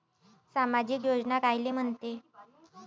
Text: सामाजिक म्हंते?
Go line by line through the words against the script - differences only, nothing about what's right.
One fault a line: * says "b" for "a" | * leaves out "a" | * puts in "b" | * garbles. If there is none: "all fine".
* puts in "योजना कायले"